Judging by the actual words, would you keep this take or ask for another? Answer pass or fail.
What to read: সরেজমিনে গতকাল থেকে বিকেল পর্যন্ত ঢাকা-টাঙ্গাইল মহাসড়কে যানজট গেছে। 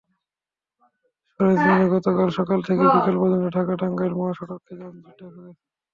fail